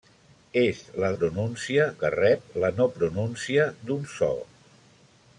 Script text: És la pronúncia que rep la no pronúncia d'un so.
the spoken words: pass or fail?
pass